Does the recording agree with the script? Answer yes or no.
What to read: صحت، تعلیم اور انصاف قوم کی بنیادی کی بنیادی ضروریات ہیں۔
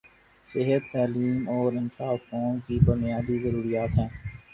no